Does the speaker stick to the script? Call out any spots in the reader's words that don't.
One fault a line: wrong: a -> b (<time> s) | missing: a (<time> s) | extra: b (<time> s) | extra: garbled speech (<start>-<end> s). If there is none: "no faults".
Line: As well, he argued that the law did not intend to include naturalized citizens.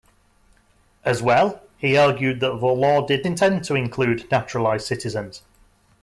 missing: not (3.3 s)